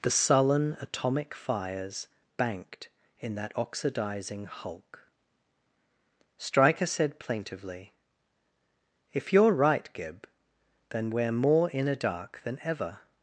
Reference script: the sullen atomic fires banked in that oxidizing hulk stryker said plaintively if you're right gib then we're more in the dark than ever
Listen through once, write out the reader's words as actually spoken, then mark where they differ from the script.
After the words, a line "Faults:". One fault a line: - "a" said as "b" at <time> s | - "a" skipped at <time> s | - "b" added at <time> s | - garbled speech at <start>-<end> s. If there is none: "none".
the sullen atomic fires banked in that oxidizing hulk stryker said plaintively if you're right gib then we're more in a dark than ever
Faults:
- "the" said as "a" at 11.9 s